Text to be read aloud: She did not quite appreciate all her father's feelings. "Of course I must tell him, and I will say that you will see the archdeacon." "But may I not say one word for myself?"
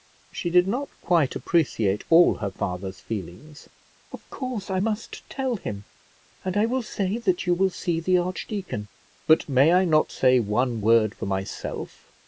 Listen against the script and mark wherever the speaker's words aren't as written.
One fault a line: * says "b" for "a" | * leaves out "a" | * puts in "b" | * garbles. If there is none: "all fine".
all fine